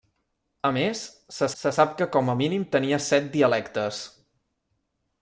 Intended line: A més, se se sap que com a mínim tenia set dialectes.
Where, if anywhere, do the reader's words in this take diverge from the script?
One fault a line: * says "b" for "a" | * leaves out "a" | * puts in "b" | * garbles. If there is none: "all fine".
all fine